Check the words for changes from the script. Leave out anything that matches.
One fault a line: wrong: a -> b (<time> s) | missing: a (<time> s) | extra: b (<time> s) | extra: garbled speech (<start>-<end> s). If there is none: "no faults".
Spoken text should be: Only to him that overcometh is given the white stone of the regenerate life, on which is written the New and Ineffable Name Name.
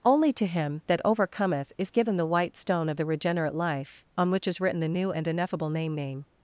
no faults